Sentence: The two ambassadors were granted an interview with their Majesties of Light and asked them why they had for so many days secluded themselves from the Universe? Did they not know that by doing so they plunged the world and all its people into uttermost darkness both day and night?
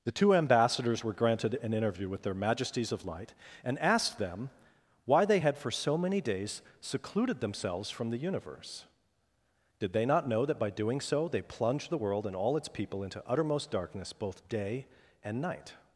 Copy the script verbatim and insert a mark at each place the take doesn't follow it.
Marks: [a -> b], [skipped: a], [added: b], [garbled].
The two ambassadors were granted an interview with their Majesties of Light and asked them why they had for so many days secluded themselves from the Universe? Did they not know that by doing so they plunged the world and all its people into uttermost darkness both day and night?